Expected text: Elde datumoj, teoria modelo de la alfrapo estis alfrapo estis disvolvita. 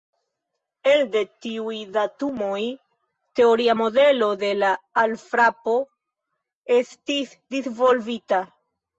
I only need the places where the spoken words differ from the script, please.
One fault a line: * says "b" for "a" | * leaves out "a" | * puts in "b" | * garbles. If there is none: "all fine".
* puts in "tiuj"
* leaves out "alfrapo estis"